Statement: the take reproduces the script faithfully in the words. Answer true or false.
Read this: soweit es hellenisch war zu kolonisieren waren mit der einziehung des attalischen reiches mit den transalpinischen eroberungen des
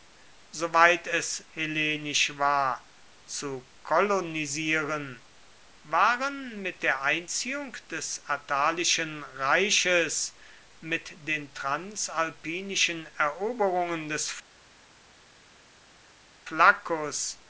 true